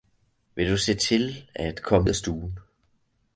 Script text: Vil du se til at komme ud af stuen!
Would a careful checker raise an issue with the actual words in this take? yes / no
yes